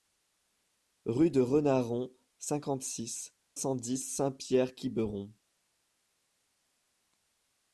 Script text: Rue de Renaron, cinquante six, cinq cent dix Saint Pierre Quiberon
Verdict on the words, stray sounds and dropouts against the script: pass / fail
fail